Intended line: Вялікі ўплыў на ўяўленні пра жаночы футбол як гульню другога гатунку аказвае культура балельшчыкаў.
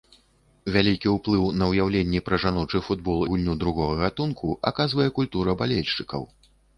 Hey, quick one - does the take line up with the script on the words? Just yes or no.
no